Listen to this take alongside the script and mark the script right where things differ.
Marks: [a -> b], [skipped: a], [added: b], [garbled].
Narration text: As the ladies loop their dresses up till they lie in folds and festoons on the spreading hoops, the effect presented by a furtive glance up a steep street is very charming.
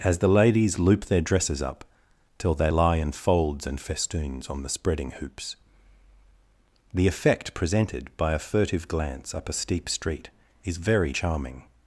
As the ladies loop their dresses up till they lie in folds and festoons on the spreading hoops, the effect presented by a furtive glance up a steep street is very charming.